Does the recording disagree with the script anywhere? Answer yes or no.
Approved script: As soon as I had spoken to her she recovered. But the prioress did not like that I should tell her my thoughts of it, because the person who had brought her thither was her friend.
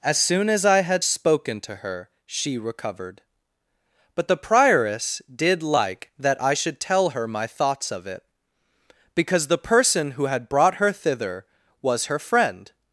yes